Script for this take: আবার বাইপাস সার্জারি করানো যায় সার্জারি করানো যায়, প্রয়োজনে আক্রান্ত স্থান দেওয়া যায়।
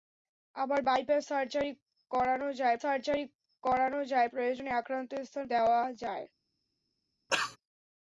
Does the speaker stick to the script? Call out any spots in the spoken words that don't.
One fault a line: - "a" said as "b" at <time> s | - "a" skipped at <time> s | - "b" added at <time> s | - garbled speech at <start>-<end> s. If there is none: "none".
none